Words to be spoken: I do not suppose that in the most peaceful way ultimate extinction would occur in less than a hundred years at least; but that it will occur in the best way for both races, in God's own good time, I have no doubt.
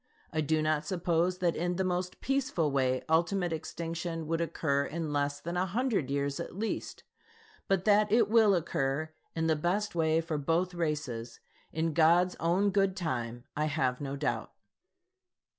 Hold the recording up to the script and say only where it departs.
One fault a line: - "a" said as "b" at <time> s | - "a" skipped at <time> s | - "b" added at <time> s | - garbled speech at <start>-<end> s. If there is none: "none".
none